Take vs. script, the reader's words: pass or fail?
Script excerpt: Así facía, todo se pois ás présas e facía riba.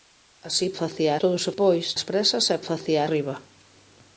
pass